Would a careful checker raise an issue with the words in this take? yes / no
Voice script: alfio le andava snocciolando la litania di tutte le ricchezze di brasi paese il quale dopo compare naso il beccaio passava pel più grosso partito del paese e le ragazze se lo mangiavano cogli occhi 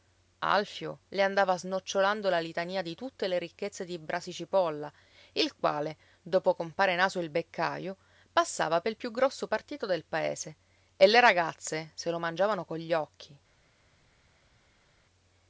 yes